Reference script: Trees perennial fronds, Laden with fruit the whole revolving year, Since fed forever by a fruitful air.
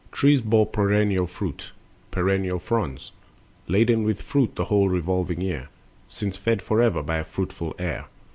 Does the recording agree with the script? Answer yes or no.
no